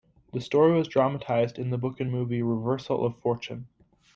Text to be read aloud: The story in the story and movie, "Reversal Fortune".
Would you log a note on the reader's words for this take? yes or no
yes